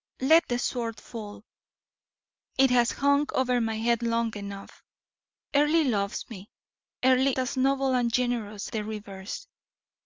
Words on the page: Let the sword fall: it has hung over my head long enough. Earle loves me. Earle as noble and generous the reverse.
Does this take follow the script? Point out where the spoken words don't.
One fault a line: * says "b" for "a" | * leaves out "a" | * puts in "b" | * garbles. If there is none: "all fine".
all fine